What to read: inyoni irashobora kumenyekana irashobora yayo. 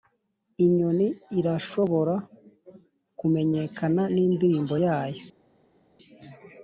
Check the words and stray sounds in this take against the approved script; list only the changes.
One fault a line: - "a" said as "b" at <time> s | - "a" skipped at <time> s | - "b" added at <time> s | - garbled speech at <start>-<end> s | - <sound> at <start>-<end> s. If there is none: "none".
- "irashobora" said as "nindirimbo" at 4.1 s